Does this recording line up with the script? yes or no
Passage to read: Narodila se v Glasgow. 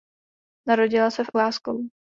yes